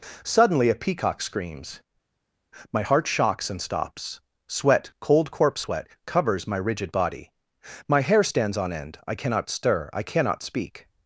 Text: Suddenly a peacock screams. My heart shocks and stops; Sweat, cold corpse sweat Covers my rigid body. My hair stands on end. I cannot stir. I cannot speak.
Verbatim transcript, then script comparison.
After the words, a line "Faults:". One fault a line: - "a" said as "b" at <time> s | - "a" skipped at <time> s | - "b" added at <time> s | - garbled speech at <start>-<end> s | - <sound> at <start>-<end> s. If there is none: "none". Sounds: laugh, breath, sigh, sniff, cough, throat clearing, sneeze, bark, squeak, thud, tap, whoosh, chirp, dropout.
Suddenly a peacock screams. My heart shocks and stops; Sweat, cold corpse sweat Covers my rigid body. My hair stands on end. I cannot stir. I cannot speak.
Faults:
none